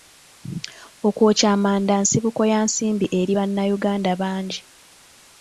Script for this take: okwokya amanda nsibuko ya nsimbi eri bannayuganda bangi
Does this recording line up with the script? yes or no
yes